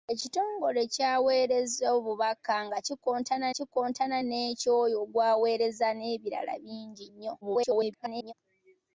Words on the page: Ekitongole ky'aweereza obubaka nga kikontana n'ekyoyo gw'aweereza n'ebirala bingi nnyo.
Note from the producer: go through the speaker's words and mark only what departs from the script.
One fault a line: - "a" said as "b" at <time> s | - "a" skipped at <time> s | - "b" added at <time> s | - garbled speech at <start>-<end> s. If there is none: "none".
- "kikontana" added at 3.6 s
- garbled speech at 7.4-8.3 s